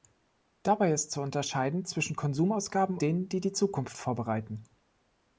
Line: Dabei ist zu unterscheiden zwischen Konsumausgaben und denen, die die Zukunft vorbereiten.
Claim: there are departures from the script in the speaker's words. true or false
true